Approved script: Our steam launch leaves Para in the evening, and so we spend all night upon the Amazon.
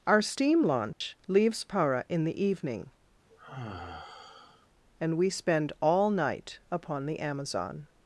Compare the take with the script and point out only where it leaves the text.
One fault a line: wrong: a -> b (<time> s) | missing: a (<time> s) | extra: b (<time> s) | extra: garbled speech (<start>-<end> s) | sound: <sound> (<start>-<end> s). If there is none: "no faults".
sound: dropout (0.9-1.0 s)
sound: sigh (3.3-4.7 s)
missing: so (5.2 s)